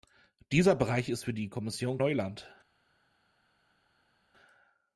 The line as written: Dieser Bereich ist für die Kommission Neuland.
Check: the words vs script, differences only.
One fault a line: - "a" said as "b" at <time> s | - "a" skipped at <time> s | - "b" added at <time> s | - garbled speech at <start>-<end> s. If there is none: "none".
none